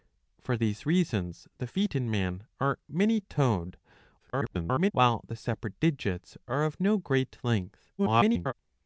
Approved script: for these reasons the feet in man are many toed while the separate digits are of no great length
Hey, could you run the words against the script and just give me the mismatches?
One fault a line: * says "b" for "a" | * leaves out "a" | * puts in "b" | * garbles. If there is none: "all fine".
* garbles
* garbles